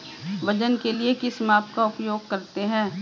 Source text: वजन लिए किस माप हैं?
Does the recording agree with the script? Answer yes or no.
no